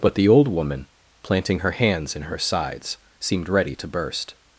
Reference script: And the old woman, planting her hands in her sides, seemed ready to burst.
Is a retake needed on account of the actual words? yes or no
yes